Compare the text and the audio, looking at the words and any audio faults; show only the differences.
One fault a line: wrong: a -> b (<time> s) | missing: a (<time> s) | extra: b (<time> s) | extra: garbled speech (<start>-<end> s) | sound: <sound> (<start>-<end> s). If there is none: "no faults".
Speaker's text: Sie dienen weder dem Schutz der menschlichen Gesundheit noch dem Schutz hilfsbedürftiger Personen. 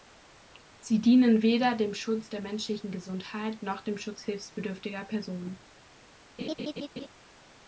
sound: laugh (6.4-7.1 s)